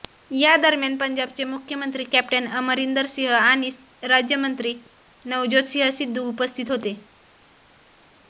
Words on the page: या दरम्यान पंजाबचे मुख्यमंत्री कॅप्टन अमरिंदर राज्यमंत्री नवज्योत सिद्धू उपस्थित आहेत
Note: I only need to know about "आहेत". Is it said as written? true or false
false